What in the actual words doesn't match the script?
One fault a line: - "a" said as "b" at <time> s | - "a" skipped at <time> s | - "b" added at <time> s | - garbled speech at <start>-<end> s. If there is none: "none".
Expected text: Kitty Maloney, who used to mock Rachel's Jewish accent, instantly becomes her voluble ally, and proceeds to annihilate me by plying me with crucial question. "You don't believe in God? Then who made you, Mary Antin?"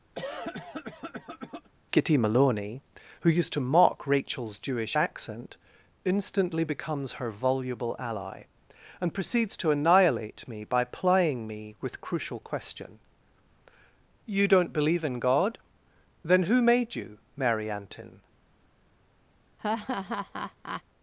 none